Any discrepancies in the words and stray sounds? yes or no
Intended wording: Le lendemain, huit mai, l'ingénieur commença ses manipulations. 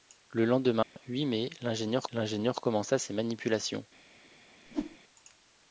yes